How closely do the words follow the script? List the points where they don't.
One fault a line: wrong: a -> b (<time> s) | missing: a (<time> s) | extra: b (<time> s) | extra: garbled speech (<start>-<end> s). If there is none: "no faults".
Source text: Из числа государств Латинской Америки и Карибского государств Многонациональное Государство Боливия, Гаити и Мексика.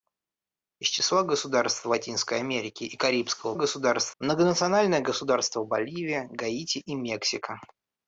no faults